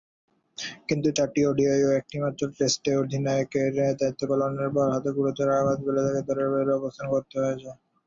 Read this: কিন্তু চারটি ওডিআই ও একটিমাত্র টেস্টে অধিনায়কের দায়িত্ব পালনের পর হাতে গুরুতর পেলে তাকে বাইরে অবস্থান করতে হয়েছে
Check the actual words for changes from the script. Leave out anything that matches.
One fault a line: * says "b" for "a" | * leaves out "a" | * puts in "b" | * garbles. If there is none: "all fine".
* puts in "আঘাত"
* puts in "দলের"